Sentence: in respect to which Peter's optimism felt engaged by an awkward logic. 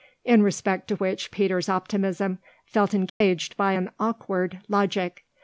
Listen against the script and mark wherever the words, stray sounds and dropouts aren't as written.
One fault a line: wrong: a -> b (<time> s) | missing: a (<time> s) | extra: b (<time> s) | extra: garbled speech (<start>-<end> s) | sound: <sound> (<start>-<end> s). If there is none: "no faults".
sound: dropout (3.1-3.2 s)